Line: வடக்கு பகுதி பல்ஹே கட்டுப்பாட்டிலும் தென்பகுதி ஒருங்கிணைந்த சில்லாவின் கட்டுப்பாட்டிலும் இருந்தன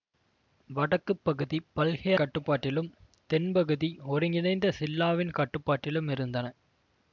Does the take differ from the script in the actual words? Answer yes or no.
no